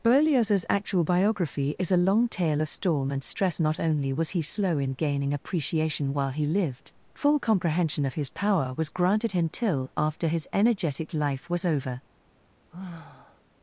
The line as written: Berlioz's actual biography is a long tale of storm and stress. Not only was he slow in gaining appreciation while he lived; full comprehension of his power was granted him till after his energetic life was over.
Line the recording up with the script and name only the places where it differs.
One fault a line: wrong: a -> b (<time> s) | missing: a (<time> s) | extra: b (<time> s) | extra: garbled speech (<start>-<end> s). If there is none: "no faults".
no faults